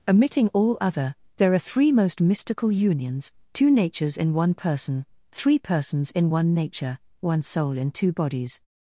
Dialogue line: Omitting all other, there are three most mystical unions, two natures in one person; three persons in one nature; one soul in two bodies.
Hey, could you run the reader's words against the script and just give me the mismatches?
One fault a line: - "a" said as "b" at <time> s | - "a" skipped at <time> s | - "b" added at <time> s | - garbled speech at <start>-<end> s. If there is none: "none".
none